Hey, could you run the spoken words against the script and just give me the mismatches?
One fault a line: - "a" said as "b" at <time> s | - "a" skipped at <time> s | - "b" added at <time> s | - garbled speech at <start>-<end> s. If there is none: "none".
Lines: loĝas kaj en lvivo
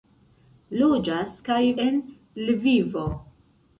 none